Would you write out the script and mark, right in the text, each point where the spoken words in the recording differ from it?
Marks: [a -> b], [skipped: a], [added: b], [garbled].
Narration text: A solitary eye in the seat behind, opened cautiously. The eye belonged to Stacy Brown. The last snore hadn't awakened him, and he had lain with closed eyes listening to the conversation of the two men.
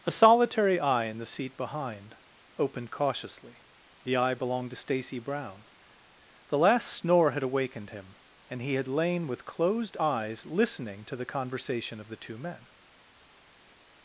A solitary eye in the seat behind, opened cautiously. The eye belonged to Stacy Brown. The last snore [hadn't -> had] awakened him, and he had lain with closed eyes listening to the conversation of the two men.